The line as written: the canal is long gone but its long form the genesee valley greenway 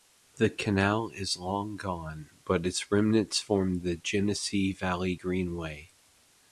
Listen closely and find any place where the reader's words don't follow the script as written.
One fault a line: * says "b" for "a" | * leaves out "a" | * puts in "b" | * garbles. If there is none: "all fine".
* says "remnants" for "long"